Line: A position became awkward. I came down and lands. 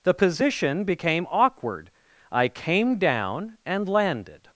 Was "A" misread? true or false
true